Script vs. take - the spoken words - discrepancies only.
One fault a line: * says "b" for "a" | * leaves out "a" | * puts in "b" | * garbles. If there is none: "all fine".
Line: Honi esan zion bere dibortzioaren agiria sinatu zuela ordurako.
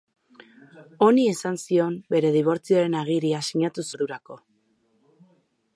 * leaves out "zuela"